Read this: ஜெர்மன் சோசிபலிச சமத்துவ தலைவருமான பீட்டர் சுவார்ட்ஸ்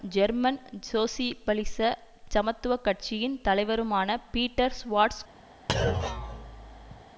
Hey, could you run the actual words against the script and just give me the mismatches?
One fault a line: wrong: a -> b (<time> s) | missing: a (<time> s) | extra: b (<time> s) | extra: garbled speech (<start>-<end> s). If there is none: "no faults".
extra: கட்சியின் (2.8 s)